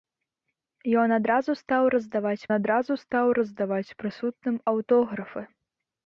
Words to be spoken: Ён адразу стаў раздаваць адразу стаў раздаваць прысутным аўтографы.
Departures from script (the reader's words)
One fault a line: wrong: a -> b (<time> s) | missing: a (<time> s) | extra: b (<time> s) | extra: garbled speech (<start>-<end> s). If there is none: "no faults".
no faults